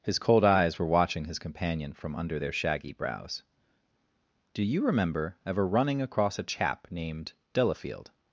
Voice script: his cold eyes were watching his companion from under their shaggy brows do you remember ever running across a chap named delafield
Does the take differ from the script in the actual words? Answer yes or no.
no